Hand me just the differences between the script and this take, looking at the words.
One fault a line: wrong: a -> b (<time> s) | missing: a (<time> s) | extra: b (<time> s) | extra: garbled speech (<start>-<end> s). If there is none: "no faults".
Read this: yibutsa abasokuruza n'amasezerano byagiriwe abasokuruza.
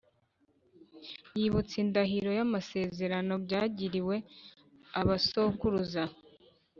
wrong: abasokuruza -> indahiro (1.8 s)